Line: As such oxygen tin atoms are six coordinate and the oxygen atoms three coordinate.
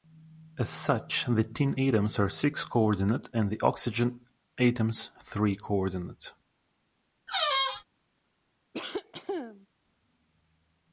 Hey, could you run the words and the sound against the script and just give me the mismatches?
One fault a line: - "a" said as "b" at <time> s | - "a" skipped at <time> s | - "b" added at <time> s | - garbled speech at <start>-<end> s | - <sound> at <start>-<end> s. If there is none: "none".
- "oxygen" said as "the" at 1.3 s
- squeak at 7.3-7.9 s
- cough at 8.7-9.7 s